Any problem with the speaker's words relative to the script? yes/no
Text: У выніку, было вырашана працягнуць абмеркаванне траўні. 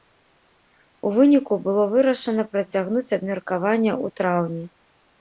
yes